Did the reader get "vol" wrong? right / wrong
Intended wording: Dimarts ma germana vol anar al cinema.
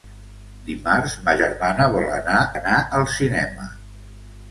right